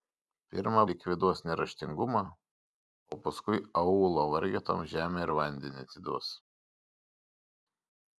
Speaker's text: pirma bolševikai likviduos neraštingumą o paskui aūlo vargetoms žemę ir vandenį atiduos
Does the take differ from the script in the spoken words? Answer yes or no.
yes